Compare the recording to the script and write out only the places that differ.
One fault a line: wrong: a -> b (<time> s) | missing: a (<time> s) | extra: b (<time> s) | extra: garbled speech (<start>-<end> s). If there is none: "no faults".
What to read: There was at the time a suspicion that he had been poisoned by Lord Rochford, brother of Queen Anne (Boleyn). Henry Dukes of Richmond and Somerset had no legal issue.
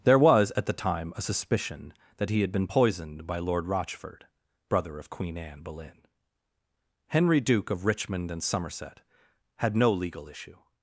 wrong: Dukes -> Duke (7.4 s)